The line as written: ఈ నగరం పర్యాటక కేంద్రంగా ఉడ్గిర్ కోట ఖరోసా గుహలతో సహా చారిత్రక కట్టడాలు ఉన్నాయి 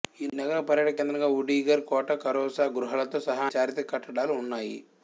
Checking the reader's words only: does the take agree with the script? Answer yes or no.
yes